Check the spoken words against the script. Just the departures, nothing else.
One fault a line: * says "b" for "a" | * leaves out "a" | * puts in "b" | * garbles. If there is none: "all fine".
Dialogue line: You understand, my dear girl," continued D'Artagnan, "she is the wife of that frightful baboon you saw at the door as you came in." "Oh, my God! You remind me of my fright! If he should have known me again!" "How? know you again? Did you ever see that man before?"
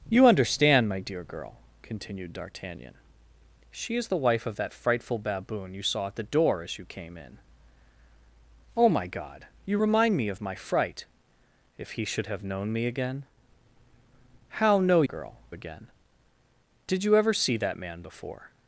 * says "girl" for "you"